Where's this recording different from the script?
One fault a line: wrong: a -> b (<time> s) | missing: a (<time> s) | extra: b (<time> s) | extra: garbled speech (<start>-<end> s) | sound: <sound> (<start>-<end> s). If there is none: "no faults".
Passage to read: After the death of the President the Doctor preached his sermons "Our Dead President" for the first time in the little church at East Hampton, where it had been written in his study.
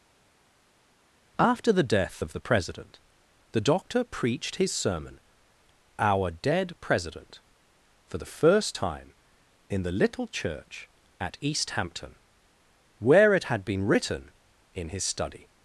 wrong: sermons -> sermon (4.7 s)